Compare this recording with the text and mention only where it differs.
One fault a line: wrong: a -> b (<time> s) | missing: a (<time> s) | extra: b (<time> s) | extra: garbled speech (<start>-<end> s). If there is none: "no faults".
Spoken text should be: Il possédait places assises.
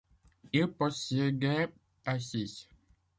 missing: places (1.7 s)